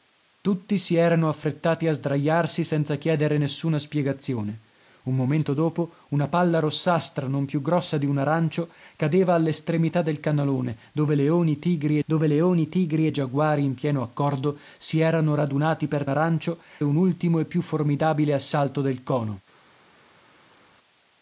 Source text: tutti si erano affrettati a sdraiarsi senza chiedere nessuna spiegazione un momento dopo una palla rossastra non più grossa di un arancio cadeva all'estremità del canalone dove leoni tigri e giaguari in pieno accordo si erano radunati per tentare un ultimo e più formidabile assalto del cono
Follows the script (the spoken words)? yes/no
no